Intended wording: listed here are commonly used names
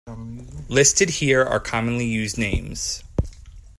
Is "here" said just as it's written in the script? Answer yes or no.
yes